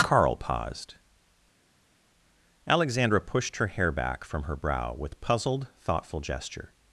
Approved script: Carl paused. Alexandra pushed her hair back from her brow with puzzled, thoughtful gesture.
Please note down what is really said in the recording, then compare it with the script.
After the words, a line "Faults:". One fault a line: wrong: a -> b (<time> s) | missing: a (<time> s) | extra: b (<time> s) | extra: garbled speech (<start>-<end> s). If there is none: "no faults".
Carl paused. Alexandra pushed her hair back from her brow with puzzled, thoughtful gesture.
Faults:
no faults